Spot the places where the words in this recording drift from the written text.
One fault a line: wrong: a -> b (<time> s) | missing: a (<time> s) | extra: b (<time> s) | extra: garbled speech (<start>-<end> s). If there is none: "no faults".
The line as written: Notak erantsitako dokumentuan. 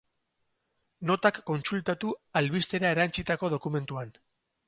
extra: kontsultatu albistera (1.5 s)